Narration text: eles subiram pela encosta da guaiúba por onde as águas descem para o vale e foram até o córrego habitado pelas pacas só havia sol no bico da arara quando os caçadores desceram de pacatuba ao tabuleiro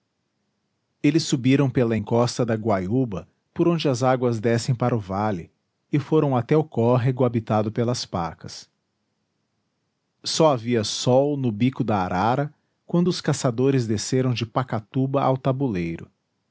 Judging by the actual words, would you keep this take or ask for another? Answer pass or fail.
pass